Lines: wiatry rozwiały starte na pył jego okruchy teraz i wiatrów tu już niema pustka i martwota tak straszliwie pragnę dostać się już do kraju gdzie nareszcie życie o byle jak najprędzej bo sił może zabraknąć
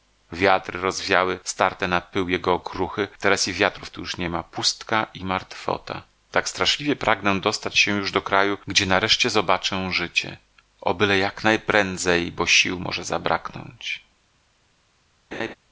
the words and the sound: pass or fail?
fail